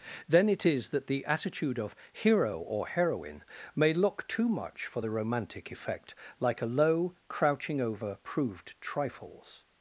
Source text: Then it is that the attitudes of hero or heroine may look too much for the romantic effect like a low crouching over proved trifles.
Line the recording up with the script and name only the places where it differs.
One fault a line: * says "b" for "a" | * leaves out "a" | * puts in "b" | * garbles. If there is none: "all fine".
* says "attitude" for "attitudes"